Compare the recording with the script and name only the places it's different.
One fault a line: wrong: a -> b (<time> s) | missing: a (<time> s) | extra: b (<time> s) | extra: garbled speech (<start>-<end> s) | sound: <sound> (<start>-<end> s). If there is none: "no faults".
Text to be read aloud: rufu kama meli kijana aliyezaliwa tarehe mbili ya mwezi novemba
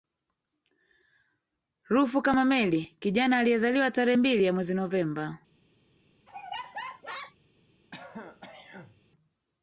sound: laugh (6.3-7.4 s)
sound: throat clearing (7.9-9.0 s)